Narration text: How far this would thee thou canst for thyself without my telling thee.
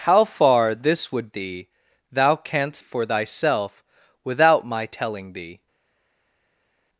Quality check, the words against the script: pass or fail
pass